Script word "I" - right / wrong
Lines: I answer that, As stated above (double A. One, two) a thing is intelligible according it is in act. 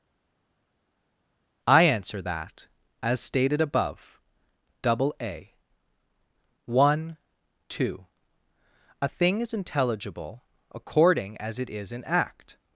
right